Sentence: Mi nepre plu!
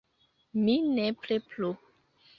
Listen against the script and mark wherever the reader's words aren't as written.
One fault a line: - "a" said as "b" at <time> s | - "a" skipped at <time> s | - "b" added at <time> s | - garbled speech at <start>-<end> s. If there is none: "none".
none